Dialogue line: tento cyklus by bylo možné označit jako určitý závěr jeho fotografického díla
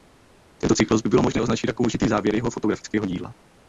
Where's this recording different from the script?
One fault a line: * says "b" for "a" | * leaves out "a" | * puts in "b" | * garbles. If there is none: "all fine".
all fine